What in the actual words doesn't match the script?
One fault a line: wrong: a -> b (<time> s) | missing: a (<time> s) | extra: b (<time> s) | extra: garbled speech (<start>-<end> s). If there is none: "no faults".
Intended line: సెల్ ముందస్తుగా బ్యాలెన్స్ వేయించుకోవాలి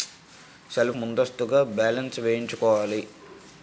no faults